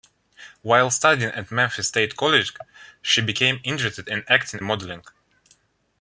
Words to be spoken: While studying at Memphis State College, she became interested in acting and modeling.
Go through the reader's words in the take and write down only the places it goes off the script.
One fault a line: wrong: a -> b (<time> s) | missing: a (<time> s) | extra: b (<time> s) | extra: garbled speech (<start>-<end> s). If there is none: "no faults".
missing: and (4.6 s)